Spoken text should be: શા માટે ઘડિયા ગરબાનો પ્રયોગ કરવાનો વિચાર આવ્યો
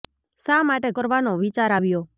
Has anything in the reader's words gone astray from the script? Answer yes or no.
yes